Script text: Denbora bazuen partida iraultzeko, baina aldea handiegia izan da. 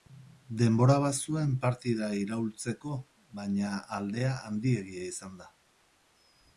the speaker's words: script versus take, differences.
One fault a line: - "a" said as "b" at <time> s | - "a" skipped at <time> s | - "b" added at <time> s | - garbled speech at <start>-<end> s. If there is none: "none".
none